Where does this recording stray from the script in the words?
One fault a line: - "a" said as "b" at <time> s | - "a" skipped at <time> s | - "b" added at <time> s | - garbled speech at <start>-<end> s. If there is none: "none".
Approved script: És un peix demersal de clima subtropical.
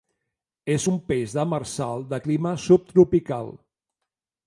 none